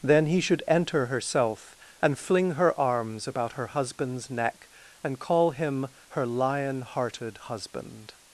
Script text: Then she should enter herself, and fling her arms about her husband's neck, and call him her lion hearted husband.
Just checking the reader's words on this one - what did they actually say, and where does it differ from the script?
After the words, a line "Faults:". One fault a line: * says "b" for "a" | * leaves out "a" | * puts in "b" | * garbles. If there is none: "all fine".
Then he should enter herself, and fling her arms about her husband's neck, and call him her lion hearted husband.
Faults:
* says "he" for "she"